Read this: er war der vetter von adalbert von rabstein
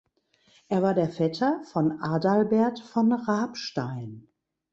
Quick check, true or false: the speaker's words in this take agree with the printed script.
true